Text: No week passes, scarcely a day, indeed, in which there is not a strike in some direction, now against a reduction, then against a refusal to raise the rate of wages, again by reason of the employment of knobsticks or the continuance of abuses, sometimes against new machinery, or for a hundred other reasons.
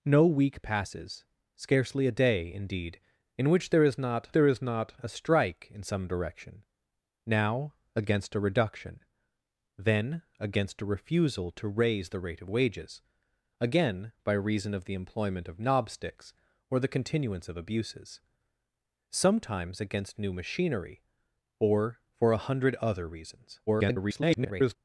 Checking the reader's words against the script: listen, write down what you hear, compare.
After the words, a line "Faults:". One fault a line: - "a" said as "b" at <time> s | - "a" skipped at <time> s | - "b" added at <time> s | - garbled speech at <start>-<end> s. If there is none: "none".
No week passes, scarcely a day, indeed, in which there is not there is not a strike in some direction, now against a reduction, then against a refusal to raise the rate of wages, again by reason of the employment of knobsticks or the continuance of abuses, sometimes against new machinery, or for a hundred other reasons. [garbled]
Faults:
- "there is not" added at 4.3 s
- garbled speech at 23.7-24.8 s